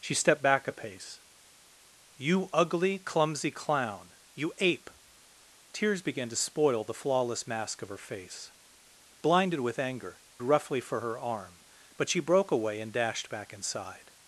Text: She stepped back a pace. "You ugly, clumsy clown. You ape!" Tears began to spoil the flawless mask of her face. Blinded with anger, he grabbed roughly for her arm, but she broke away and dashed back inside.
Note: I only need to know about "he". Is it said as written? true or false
false